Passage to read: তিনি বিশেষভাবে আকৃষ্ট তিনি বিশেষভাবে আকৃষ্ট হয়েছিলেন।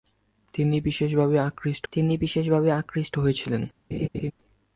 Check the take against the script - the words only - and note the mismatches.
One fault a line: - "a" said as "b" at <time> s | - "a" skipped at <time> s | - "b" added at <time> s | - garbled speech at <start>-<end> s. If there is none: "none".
none